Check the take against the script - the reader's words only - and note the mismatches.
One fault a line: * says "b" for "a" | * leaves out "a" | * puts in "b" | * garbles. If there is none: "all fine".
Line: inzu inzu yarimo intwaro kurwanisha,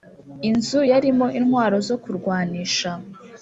* leaves out "inzu"
* puts in "zo"